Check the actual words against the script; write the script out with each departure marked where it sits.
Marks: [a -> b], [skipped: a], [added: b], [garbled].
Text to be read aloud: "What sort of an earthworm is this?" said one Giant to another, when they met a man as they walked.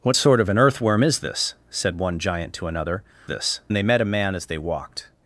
"What sort of an earthworm is this?" said one Giant to another, [when -> this] they met a man as they walked.